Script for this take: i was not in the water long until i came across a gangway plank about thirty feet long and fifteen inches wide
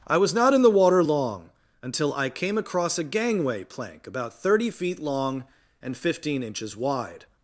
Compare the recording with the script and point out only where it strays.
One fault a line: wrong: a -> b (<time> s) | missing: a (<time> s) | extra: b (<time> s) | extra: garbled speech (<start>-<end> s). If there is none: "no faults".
no faults